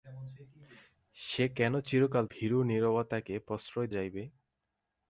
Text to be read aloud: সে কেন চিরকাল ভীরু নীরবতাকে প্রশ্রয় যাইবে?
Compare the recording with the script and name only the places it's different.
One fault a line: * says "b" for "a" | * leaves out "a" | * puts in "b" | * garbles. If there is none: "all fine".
all fine